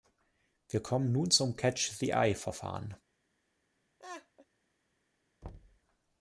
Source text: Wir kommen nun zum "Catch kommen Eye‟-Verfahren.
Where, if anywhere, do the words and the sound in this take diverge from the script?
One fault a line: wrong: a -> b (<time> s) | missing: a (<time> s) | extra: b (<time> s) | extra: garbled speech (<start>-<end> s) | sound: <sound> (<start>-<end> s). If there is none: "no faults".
wrong: kommen -> the (2.0 s)
sound: laugh (4.0-4.5 s)
sound: thud (5.4-5.8 s)